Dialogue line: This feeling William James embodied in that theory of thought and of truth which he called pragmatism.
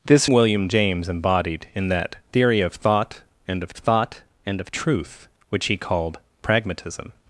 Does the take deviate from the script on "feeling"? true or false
true